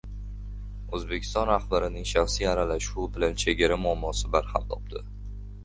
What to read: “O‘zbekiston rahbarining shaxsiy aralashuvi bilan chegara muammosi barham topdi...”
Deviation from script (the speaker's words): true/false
false